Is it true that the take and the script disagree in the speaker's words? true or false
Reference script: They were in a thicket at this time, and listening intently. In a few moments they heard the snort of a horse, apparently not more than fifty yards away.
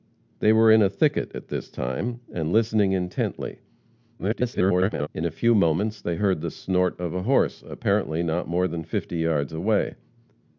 true